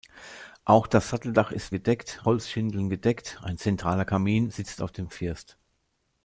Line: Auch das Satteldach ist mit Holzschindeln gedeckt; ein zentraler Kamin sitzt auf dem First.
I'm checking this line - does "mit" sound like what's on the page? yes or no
no